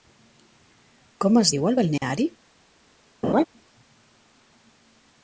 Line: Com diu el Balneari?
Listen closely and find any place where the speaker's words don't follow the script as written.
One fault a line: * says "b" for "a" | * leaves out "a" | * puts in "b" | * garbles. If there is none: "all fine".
* puts in "es"